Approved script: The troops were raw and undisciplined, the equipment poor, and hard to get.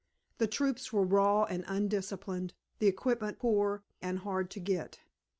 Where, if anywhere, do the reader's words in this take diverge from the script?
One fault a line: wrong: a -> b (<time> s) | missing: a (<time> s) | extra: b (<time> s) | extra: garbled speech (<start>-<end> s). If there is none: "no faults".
no faults